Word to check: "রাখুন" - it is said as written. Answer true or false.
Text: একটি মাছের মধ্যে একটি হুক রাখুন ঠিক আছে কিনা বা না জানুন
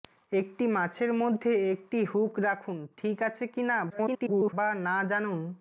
true